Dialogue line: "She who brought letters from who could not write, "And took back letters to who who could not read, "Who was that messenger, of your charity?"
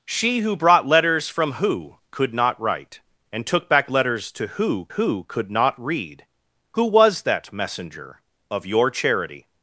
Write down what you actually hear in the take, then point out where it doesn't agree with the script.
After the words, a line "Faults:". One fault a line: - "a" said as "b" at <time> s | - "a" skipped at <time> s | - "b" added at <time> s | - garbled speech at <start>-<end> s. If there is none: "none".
"She who brought letters from who could not write, "And took back letters to who who could not read, "Who was that messenger, of your charity?"
Faults:
none